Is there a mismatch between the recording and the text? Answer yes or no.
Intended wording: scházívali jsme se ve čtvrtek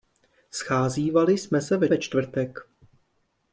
yes